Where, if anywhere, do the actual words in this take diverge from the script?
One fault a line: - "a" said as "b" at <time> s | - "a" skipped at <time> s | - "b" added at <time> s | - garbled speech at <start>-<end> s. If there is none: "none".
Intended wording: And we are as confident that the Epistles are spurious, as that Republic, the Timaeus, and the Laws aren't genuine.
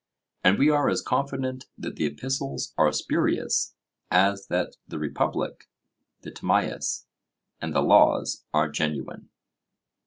- "the" added at 4.9 s
- "aren't" said as "are" at 8.5 s